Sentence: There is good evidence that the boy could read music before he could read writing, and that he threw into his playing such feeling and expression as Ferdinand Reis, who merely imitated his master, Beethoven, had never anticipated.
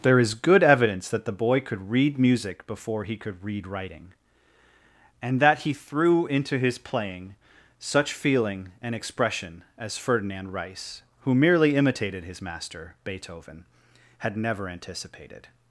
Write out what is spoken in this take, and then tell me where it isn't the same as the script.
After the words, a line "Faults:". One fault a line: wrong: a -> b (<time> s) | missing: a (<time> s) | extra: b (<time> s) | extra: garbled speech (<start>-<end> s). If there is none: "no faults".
There is good evidence that the boy could read music before he could read writing, and that he threw into his playing such feeling and expression as Ferdinand Reis, who merely imitated his master, Beethoven, had never anticipated.
Faults:
no faults